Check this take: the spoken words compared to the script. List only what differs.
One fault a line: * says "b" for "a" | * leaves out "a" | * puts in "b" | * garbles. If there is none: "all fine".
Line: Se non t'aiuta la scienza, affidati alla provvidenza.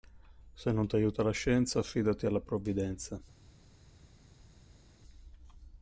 all fine